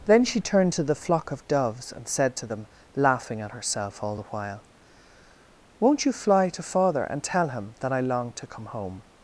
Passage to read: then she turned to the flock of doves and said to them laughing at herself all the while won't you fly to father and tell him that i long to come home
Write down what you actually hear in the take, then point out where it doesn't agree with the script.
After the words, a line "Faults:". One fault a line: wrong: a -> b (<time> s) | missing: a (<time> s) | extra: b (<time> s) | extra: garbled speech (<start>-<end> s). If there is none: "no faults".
then she turned to the flock of doves and said to them laughing at herself all the while won't you fly to father and tell him that i long to come home
Faults:
no faults